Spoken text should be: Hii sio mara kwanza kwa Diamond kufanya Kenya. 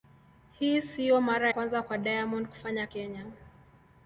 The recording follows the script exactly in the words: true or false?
true